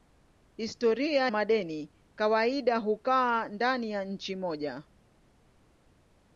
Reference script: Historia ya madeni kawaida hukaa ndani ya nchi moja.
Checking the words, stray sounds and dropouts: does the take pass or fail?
fail